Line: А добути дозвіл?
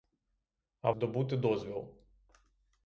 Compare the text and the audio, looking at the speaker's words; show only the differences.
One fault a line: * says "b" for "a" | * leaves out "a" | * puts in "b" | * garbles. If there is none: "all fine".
all fine